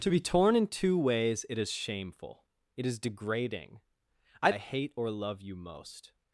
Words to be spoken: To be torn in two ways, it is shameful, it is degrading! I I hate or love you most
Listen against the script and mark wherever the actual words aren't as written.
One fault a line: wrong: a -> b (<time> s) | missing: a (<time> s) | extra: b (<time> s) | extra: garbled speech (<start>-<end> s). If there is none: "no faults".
no faults